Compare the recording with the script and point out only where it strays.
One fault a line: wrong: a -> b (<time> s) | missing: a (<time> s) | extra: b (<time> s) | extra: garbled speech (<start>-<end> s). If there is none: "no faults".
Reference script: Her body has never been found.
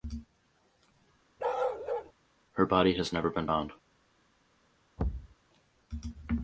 no faults